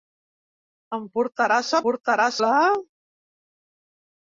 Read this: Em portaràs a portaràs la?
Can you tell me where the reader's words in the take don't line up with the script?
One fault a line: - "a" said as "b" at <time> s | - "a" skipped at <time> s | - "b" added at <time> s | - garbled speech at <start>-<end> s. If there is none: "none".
none